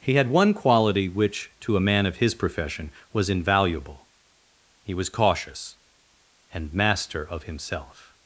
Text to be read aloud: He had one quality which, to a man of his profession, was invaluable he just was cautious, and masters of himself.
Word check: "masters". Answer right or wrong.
wrong